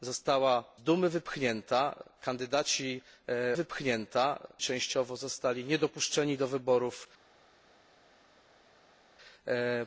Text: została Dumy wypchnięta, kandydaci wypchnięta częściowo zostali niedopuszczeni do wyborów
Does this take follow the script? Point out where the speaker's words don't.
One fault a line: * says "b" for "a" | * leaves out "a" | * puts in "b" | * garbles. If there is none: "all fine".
all fine